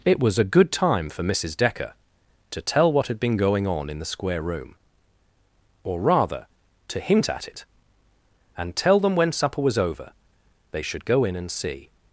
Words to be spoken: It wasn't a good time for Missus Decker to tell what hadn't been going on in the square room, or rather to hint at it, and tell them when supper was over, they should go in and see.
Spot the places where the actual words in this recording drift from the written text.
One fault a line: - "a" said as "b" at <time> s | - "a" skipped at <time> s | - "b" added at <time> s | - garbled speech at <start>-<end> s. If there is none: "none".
- "wasn't" said as "was" at 0.2 s
- "hadn't" said as "had" at 3.0 s